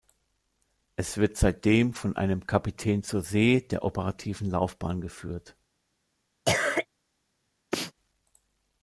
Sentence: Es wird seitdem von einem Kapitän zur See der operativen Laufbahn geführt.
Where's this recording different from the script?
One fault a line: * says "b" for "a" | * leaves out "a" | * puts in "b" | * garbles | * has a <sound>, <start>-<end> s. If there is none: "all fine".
* has a cough, 6.4-6.9 s
* has a sneeze, 7.7-7.9 s